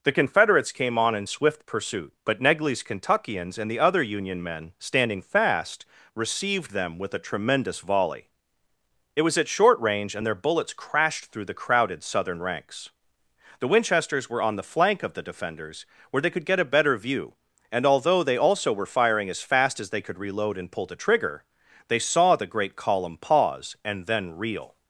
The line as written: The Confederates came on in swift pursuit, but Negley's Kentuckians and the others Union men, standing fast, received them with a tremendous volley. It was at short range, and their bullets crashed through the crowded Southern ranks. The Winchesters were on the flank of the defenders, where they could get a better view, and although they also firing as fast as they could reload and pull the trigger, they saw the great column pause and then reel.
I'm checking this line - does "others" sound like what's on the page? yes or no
no